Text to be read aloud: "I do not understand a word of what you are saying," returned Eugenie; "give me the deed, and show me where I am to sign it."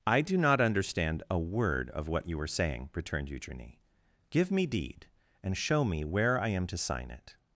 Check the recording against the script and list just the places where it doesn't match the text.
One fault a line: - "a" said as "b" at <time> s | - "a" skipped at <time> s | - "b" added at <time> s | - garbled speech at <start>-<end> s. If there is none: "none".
- "the" skipped at 4.7 s